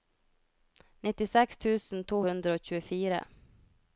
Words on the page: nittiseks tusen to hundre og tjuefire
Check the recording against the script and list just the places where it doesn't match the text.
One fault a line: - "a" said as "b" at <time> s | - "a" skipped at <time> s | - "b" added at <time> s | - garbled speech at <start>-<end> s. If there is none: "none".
none